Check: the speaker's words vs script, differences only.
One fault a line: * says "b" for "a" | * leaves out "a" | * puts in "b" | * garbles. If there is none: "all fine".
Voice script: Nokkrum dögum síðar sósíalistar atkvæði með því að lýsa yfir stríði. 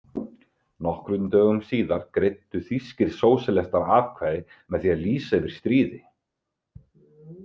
* puts in "greiddu þýskir"